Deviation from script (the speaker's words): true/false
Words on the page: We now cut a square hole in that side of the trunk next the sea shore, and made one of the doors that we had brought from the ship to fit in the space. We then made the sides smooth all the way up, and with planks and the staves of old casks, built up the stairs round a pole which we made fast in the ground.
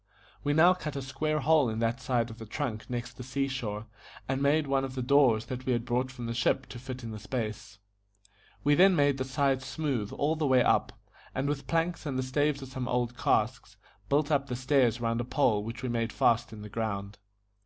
true